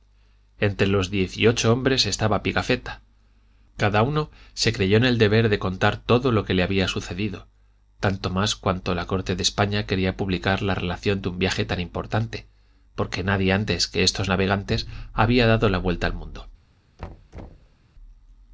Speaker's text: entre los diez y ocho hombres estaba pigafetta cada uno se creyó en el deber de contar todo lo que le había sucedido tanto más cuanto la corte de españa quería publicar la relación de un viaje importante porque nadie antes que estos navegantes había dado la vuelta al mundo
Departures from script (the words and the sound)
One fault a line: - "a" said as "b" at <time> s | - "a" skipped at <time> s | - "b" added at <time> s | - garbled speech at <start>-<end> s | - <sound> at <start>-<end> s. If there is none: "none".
- "tan" added at 11.7 s
- thud at 17.0-17.8 s